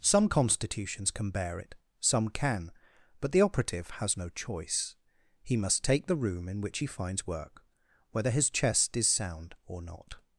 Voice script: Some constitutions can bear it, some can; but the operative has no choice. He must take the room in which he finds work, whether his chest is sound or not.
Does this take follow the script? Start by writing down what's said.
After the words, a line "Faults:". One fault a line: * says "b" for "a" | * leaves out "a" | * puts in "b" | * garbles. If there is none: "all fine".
Some constitutions can bear it, some can; but the operative has no choice. He must take the room in which he finds work, whether his chest is sound or not.
Faults:
all fine